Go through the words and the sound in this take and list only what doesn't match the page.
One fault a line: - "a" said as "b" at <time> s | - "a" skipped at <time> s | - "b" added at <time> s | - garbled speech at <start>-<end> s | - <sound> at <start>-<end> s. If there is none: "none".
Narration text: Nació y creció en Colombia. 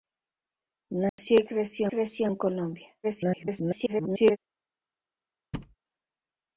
- dropout at 1.1-1.2 s
- "creció" added at 1.9 s
- garbled speech at 3.0-4.4 s
- thud at 5.5-5.8 s